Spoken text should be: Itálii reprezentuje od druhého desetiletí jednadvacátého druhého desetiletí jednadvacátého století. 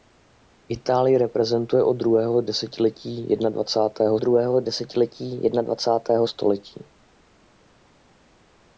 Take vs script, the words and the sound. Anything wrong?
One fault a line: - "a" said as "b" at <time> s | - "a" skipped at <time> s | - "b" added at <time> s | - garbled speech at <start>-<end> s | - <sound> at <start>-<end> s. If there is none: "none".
none